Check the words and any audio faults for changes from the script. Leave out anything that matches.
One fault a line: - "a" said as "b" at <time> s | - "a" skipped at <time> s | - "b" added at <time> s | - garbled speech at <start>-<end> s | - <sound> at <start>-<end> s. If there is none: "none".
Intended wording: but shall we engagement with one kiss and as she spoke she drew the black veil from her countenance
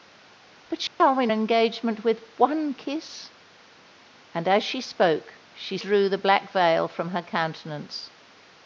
- dropout at 0.9-1.0 s